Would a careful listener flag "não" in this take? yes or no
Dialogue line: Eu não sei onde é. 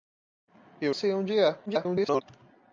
yes